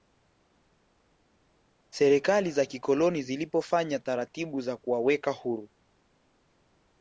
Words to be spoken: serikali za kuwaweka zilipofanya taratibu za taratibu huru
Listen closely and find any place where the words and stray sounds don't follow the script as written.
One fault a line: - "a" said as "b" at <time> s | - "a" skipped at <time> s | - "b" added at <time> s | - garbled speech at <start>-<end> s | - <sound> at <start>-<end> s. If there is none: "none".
- "kuwaweka" said as "kikoloni" at 2.7 s
- "taratibu" said as "kuwaweka" at 4.8 s